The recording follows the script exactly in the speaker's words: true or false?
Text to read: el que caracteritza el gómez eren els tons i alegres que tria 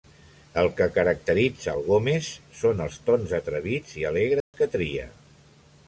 false